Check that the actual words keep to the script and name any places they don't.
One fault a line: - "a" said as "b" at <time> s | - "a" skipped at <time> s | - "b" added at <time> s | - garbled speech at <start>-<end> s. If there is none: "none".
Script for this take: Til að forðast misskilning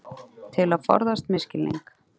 none